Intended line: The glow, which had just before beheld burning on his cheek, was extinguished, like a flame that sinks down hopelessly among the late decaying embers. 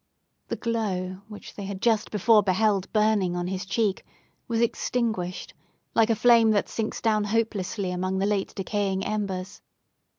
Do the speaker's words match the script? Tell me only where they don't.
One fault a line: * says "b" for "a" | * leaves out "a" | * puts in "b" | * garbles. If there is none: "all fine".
* puts in "they"